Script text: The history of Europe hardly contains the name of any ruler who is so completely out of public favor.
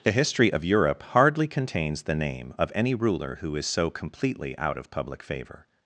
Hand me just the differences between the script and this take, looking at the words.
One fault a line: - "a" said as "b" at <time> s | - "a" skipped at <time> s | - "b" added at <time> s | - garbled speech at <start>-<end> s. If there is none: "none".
none